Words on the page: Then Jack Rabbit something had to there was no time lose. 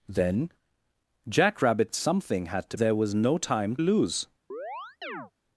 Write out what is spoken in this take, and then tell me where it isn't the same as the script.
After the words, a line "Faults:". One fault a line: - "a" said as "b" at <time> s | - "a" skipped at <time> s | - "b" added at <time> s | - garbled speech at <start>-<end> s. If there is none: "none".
Then Jack Rabbit something had to there was no time lose.
Faults:
none